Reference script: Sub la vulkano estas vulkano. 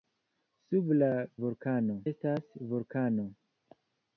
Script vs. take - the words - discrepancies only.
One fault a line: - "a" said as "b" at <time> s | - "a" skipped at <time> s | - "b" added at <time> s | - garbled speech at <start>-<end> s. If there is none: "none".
none